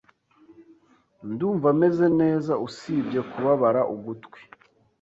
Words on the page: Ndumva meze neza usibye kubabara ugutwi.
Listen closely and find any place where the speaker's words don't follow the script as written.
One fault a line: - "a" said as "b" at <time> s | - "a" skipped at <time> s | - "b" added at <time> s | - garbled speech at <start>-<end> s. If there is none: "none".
none